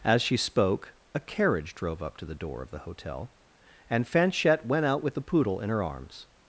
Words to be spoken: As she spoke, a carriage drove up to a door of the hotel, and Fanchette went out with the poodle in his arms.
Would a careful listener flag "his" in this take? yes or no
yes